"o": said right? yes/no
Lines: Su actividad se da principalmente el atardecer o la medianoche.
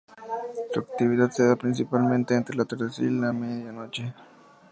no